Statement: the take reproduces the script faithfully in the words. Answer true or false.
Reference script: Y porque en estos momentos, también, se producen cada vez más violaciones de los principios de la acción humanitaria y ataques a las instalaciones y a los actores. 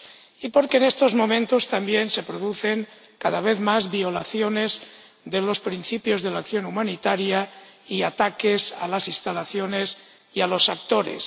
true